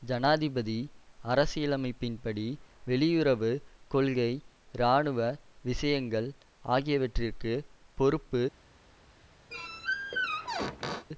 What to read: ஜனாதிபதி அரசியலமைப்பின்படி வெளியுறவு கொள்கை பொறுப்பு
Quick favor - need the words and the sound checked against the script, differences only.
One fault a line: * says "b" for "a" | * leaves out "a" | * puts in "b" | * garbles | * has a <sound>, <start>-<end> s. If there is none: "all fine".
* puts in "இராணுவ விஷயங்கள் ஆகியவற்றிற்கு"
* has a squeak, 9.5-11.1 s